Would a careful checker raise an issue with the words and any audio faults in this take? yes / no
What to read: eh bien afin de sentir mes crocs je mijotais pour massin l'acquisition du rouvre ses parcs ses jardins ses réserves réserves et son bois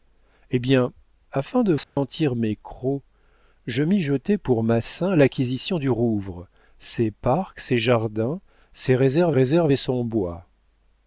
yes